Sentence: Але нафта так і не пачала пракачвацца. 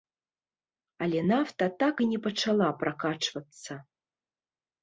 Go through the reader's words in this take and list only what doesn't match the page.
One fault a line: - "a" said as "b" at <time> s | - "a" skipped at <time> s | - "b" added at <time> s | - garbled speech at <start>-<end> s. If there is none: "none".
none